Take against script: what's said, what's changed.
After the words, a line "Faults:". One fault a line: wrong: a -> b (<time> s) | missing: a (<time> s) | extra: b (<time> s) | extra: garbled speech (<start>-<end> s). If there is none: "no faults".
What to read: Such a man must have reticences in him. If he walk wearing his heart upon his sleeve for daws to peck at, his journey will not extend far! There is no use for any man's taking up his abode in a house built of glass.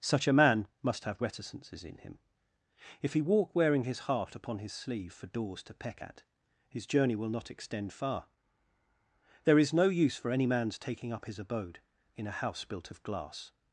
Such a man must have reticences in him. If he walk wearing his heart upon his sleeve for daws to peck at, his journey will not extend far! There is no use for any man's taking up his abode in a house built of glass.
Faults:
no faults